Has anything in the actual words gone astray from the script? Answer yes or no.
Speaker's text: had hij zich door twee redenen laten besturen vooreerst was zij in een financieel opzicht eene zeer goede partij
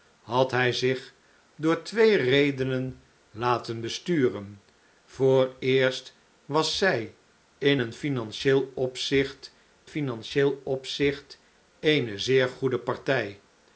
yes